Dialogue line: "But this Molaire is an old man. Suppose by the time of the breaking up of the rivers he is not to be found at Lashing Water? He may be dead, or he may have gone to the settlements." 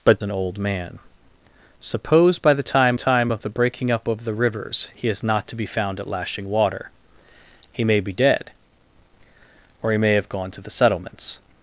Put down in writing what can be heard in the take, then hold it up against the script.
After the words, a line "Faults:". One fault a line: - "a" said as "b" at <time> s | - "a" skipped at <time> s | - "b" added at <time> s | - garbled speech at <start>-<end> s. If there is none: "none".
"But an old man. Suppose by the time time of the breaking up of the rivers he is not to be found at Lashing Water? He may be dead, or he may have gone to the settlements."
Faults:
- "this Molaire is" skipped at 0.2 s
- "time" added at 3.0 s